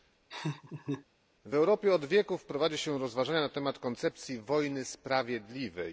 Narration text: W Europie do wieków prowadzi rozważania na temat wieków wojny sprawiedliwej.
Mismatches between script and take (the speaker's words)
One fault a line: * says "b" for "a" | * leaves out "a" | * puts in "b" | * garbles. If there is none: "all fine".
* says "od" for "do"
* puts in "się"
* says "koncepcji" for "wieków"